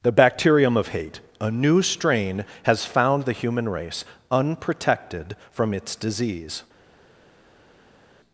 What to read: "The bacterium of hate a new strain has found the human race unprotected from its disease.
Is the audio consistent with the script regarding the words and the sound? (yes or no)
yes